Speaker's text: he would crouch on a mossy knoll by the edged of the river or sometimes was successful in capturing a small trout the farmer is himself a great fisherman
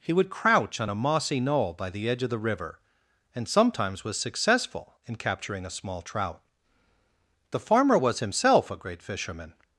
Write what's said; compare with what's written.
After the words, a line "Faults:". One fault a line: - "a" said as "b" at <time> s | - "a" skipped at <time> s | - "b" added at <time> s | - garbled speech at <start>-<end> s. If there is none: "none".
he would crouch on a mossy knoll by the edge of the river and sometimes was successful in capturing a small trout the farmer was himself a great fisherman
Faults:
- "edged" said as "edge" at 2.1 s
- "or" said as "and" at 3.4 s
- "is" said as "was" at 8.0 s